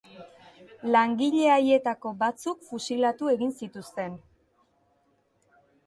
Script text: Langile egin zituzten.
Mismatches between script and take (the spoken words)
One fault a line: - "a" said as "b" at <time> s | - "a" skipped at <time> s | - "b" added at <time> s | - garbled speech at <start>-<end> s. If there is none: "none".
- "haietako batzuk fusilatu" added at 1.6 s